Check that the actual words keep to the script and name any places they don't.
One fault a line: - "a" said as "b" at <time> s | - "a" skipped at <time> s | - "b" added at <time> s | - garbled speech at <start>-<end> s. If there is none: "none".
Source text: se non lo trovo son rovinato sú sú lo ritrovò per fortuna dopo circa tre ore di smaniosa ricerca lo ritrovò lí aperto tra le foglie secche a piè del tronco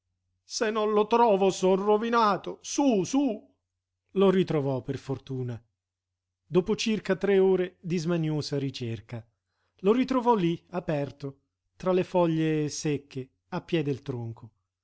none